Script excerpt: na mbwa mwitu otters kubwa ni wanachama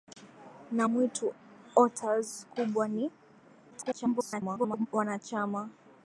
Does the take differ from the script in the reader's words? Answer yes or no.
yes